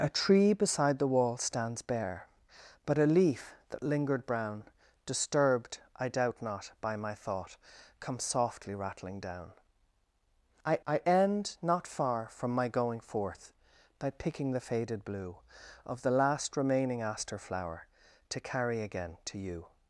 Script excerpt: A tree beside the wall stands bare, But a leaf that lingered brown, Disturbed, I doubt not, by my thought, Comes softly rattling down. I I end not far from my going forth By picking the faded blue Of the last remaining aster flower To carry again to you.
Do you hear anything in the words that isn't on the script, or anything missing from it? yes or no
no